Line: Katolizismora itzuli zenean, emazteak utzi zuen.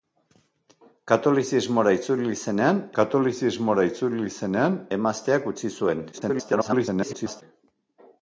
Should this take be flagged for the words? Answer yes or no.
yes